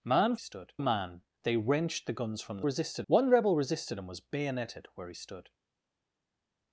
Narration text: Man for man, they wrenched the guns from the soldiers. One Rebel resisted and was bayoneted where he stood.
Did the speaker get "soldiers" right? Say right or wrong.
wrong